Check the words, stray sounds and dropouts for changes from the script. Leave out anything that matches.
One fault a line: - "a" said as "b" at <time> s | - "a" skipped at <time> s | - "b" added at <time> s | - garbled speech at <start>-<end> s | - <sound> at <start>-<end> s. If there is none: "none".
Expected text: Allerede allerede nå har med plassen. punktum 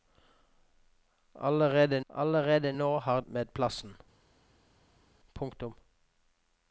none